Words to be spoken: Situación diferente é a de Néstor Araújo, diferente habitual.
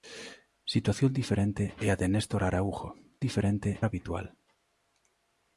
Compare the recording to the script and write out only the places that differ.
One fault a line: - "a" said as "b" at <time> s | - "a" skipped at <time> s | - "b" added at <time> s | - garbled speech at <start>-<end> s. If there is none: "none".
none